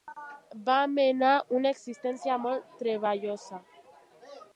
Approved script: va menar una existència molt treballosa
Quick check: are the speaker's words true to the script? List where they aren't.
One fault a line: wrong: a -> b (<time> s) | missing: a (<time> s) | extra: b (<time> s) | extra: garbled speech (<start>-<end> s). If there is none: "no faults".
no faults